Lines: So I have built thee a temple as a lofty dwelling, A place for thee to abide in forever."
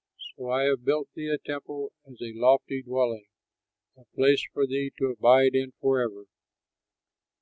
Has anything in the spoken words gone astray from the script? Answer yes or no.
no